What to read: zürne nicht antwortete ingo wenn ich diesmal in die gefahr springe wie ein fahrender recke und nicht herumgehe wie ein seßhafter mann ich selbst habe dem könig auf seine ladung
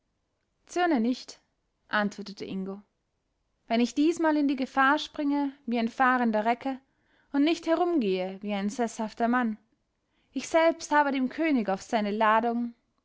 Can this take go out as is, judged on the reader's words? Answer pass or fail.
pass